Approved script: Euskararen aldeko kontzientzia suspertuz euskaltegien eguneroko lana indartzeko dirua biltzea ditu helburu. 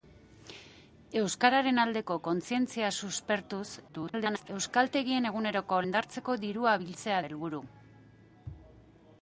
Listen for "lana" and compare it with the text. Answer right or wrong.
wrong